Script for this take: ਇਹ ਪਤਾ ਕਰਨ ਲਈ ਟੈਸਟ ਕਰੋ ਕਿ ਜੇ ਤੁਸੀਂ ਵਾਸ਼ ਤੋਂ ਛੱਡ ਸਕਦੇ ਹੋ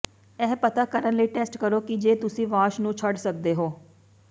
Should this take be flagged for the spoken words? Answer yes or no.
yes